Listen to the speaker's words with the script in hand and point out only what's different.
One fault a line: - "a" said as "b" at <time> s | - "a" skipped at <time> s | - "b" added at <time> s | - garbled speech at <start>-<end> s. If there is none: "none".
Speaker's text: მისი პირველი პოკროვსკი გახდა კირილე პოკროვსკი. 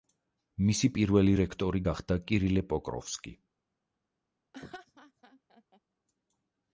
- "პოკროვსკი" said as "რექტორი" at 1.4 s